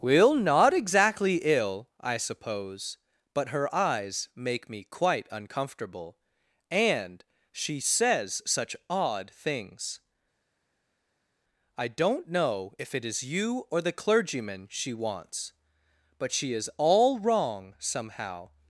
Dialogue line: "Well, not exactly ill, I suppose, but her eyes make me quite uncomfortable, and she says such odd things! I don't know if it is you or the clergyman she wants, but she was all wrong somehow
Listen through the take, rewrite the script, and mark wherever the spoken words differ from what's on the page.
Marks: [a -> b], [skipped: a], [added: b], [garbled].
"Well, not exactly ill, I suppose, but her eyes make me quite uncomfortable, and she says such odd things! I don't know if it is you or the clergyman she wants, but she [was -> is] all wrong somehow